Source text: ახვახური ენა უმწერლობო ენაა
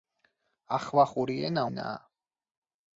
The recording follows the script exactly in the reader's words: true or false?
false